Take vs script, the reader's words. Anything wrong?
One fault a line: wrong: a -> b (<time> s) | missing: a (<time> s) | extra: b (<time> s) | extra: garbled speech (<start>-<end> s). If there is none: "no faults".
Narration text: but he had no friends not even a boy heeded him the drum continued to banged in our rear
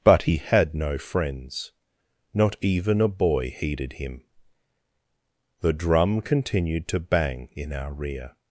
wrong: banged -> bang (7.0 s)